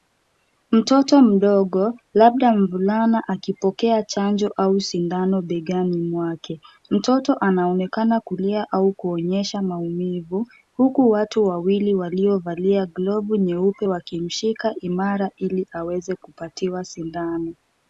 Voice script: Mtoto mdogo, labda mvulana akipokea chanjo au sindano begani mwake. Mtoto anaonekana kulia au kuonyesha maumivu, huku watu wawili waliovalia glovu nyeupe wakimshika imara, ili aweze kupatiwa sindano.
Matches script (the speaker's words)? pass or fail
pass